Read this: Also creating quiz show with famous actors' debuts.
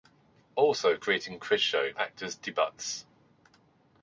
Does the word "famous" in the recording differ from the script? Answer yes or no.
yes